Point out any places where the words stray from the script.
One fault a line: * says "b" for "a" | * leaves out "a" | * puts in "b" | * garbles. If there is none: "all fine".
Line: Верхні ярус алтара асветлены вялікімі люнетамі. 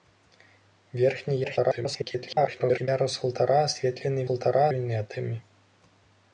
* garbles
* says "алтара" for "вялікімі"